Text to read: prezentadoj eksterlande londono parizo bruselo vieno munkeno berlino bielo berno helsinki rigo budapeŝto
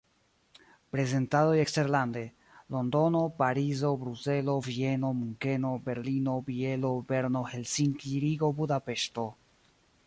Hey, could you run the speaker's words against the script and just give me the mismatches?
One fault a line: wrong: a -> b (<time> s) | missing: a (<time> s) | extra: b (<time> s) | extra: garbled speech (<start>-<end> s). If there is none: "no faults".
no faults